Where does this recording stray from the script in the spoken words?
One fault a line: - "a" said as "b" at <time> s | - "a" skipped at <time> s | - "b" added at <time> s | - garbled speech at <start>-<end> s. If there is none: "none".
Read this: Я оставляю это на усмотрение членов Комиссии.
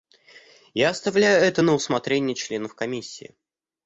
none